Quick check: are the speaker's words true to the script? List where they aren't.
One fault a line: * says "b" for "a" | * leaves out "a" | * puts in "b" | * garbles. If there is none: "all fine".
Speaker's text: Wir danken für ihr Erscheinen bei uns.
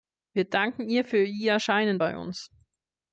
* puts in "ihr"